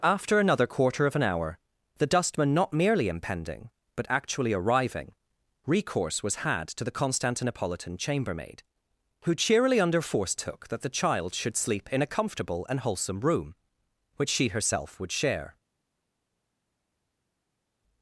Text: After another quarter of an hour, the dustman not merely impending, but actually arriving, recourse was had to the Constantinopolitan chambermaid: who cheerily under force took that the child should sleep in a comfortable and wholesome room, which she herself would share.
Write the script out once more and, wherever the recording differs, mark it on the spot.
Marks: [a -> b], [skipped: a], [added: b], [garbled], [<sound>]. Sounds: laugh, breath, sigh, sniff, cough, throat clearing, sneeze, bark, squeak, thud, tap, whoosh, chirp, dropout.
After another quarter of an hour, the dustman not merely impending, but actually arriving, recourse was had to the Constantinopolitan chambermaid: who cheerily under force took that the child should sleep in a comfortable and wholesome room, which she herself would share.